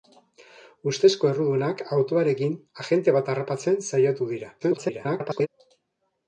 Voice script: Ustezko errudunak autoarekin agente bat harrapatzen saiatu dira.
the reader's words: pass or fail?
fail